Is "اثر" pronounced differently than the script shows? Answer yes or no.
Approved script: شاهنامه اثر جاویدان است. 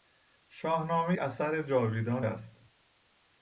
no